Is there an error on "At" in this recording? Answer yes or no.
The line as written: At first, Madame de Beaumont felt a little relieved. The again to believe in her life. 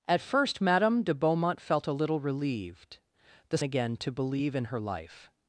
no